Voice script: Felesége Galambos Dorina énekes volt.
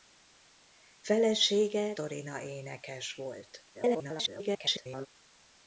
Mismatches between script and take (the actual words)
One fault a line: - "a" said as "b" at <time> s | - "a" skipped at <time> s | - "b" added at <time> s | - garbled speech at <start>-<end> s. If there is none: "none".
- "Galambos" skipped at 1.9 s
- garbled speech at 3.7-5.1 s